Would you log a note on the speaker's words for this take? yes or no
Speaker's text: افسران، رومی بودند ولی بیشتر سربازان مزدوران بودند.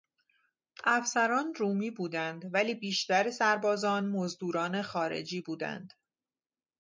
yes